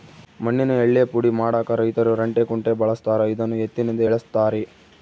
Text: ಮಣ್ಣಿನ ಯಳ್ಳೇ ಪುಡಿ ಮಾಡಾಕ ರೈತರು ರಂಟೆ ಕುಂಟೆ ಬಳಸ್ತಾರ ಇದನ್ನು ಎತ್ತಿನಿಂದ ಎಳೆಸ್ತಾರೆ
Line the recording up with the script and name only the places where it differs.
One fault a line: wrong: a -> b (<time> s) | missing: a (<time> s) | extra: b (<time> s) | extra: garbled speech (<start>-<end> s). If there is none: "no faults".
no faults